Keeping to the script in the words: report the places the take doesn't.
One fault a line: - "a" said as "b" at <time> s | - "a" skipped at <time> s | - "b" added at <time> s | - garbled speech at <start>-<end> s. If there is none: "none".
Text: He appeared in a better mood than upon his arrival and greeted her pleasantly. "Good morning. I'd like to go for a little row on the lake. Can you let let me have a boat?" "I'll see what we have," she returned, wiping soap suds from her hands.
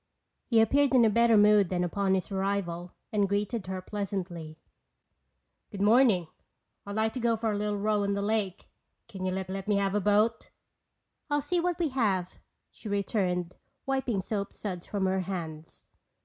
none